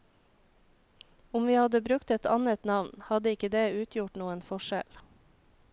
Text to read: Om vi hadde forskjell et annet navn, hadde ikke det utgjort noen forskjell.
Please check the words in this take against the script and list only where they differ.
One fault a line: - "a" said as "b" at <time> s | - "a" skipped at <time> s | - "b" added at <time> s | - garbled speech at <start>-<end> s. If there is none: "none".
- "forskjell" said as "brukt" at 1.8 s